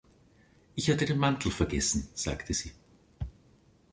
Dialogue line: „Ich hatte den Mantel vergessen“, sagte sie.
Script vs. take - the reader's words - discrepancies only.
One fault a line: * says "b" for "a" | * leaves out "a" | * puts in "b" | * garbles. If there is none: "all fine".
all fine